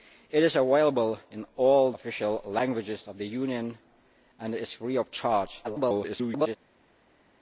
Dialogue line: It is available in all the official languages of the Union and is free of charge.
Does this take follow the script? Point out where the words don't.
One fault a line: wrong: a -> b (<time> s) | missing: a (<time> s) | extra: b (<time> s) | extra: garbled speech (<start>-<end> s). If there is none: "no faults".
missing: the (1.9 s)
extra: garbled speech (5.6-6.6 s)